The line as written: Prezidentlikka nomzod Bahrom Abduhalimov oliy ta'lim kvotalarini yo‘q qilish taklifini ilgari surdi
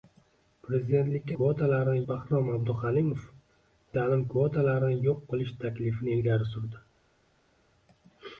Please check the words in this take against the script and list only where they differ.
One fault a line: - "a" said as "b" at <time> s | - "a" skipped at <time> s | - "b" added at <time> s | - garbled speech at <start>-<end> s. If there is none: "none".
- "nomzod" said as "kvotalarini" at 1.4 s
- "oliy" skipped at 3.2 s